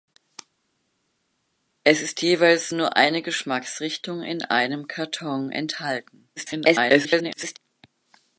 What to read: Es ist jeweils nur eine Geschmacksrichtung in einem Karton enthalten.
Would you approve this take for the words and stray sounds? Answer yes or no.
no